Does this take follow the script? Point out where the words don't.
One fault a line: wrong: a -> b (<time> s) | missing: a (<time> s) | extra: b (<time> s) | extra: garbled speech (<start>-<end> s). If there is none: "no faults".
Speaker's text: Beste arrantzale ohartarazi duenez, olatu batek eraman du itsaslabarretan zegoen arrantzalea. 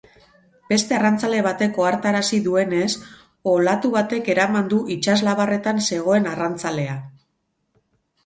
extra: batek (1.5 s)